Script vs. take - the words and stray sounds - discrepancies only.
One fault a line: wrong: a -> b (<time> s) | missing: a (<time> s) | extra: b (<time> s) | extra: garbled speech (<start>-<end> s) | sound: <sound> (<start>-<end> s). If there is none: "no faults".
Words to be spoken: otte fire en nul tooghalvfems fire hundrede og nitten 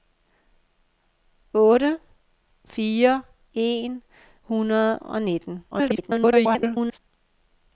missing: nul tooghalvfems fire (4.0 s)
extra: garbled speech (5.7-7.0 s)